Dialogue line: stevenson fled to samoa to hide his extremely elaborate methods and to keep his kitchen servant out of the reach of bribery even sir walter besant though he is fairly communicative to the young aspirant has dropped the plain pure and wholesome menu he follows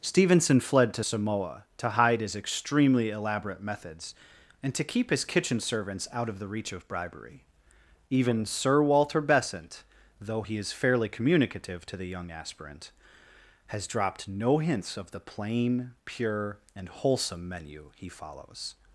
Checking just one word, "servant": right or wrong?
wrong